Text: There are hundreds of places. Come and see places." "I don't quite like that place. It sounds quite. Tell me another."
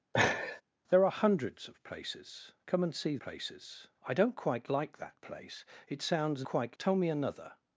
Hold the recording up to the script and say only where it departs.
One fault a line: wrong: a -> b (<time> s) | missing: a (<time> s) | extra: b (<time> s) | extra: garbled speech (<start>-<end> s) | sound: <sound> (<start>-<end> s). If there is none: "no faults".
sound: laugh (0.1-0.6 s)